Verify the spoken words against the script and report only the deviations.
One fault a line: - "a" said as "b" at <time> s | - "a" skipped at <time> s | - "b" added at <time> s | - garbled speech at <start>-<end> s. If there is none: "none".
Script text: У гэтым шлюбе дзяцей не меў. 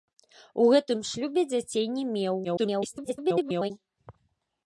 - garbled speech at 2.4-3.7 s